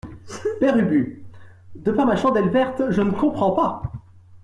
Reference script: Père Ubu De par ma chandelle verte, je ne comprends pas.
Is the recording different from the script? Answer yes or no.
no